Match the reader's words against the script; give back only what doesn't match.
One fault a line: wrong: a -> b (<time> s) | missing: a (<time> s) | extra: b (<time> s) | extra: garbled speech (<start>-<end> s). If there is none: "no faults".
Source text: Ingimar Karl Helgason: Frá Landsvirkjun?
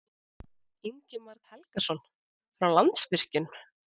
missing: Karl (1.4 s)